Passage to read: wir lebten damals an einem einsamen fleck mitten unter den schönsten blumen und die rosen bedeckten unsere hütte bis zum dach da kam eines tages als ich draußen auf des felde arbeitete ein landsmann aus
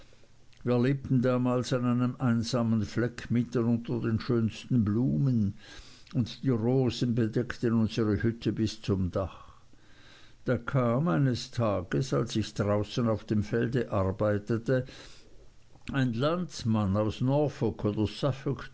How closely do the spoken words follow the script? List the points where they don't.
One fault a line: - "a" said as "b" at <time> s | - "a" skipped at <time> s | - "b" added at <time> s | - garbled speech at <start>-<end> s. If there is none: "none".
- "des" said as "dem" at 13.2 s